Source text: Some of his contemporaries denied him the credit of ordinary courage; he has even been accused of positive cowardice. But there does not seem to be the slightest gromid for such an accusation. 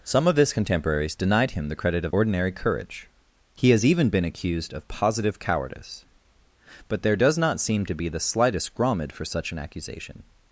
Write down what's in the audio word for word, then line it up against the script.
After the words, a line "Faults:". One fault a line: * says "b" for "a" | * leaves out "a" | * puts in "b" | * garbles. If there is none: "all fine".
Some of his contemporaries denied him the credit of ordinary courage; he has even been accused of positive cowardice. But there does not seem to be the slightest gromid for such an accusation.
Faults:
all fine